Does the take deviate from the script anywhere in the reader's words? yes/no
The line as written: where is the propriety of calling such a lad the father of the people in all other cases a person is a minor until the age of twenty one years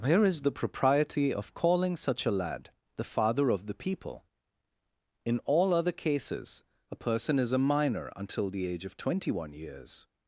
no